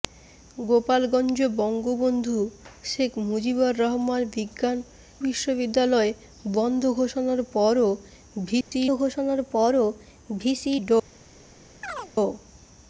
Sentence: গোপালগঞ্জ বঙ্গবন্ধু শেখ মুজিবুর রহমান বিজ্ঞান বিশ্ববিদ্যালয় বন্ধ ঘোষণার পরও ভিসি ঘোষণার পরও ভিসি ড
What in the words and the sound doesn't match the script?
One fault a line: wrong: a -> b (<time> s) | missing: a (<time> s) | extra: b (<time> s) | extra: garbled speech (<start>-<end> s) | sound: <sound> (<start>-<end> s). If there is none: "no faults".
sound: dropout (8.6-8.7 s)
sound: chirp (11.8-12.1 s)